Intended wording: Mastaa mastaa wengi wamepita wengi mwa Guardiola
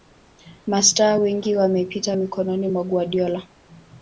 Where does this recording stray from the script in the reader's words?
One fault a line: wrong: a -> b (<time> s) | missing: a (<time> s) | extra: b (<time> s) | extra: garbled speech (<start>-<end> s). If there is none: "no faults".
missing: mastaa (1.1 s)
wrong: wengi -> mikononi (2.1 s)